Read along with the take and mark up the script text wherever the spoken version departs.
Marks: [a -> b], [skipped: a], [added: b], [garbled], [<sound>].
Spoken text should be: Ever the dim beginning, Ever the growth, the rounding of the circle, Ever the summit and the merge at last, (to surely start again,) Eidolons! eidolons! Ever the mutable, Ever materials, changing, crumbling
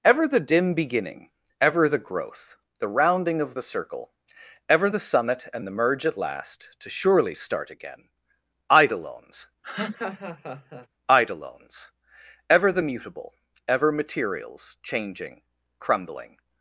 Ever the dim beginning, Ever the growth, the rounding of the circle, Ever the summit and the merge at last, (to surely start again,) Eidolons! [laugh] eidolons! Ever the mutable, Ever materials, changing, crumbling